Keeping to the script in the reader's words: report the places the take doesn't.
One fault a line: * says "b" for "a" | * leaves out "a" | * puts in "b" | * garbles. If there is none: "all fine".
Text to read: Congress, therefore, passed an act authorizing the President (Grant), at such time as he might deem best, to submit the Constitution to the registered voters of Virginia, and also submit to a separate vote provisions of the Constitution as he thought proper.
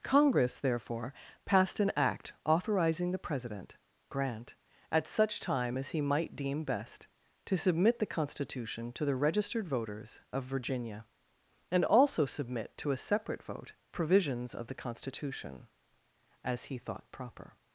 all fine